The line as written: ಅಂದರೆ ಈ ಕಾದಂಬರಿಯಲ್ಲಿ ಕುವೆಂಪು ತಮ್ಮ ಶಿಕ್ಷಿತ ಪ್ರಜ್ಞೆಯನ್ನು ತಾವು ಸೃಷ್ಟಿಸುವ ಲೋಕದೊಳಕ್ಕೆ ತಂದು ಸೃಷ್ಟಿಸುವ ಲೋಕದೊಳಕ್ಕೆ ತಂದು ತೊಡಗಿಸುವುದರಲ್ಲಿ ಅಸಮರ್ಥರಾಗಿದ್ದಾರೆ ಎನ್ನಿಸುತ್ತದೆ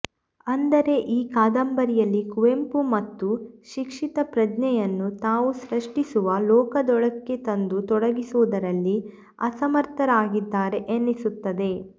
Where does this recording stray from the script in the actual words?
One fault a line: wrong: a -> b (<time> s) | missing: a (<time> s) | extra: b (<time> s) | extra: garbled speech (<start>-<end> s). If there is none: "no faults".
missing: ಸೃಷ್ಟಿಸುವ ಲೋಕದೊಳಕ್ಕೆ ತಂದು (7.8 s)